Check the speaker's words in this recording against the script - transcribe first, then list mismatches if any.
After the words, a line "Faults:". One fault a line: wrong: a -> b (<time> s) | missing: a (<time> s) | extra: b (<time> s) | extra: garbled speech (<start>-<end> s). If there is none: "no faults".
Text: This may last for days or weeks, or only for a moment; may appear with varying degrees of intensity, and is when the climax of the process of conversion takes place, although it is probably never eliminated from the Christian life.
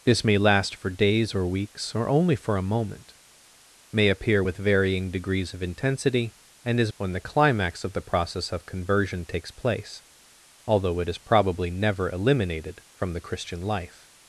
This may last for days or weeks, or only for a moment; may appear with varying degrees of intensity, and is when the climax of the process of conversion takes place, although it is probably never eliminated from the Christian life.
Faults:
no faults